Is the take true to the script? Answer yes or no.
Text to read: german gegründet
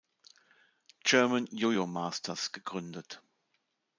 no